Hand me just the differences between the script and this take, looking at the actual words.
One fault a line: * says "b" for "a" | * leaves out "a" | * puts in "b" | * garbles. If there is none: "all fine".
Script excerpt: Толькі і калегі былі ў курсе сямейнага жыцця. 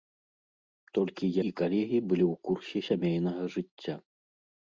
all fine